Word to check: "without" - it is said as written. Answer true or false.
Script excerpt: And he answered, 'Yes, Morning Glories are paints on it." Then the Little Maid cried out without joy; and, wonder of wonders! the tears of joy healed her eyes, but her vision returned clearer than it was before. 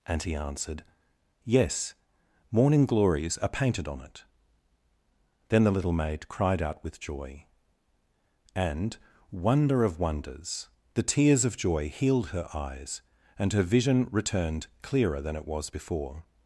false